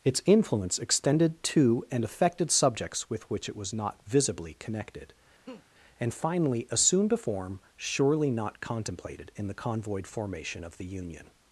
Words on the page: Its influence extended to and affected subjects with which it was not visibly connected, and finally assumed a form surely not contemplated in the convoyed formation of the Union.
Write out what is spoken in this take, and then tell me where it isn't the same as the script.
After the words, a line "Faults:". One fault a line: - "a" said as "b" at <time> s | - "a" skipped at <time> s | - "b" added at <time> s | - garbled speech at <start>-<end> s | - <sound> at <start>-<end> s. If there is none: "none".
Its influence extended to and affected subjects with which it was not visibly connected, and finally assumed a form surely not contemplated in the convoyed formation of the Union.
Faults:
- laugh at 5.5-5.7 s